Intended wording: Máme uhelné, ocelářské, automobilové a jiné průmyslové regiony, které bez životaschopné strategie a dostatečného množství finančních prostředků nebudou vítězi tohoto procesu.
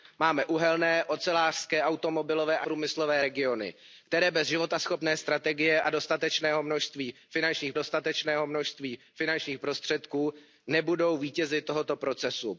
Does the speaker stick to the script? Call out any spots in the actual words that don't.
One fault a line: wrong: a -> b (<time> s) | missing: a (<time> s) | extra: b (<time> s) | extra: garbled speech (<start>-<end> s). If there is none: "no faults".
missing: jiné (2.7 s)
extra: dostatečného množství finančních (7.7 s)